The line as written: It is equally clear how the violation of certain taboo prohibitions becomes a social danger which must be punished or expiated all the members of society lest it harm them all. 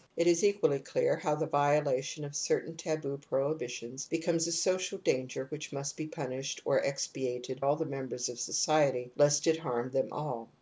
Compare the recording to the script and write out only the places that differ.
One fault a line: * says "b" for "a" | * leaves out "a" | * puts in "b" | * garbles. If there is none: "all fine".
all fine